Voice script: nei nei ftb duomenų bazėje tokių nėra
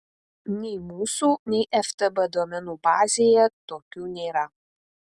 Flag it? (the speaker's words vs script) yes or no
yes